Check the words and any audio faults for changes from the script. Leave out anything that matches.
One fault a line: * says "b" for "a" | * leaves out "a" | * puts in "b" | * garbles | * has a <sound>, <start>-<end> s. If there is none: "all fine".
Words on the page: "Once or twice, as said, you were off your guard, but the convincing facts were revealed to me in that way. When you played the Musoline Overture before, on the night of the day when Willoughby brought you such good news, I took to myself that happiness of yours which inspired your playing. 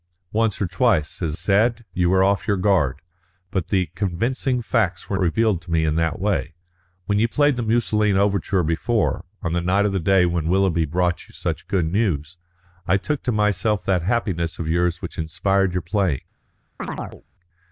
* has a chirp, 16.8-17.2 s